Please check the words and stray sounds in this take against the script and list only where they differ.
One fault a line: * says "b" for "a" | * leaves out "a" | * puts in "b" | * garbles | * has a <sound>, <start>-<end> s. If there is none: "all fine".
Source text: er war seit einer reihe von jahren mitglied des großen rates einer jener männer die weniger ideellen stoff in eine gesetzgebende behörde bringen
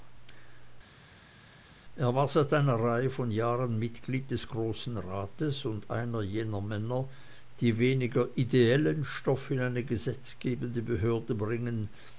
* puts in "und"